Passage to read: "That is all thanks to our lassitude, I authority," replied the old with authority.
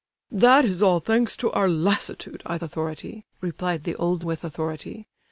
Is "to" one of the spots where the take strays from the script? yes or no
no